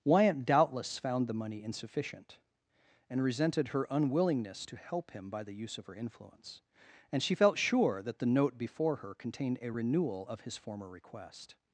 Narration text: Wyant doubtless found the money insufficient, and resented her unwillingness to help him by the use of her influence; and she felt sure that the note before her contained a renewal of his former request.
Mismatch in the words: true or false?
false